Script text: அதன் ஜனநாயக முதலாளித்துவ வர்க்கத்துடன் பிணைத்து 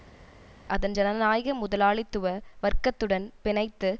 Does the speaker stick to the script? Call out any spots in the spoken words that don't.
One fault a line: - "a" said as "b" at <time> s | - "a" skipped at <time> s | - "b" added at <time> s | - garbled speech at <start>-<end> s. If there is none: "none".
none